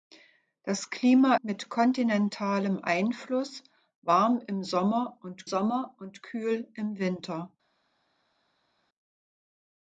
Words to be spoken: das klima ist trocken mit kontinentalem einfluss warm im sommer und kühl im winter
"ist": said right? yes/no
no